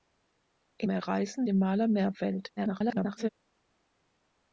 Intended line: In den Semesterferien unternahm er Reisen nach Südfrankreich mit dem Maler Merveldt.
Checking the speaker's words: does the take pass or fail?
fail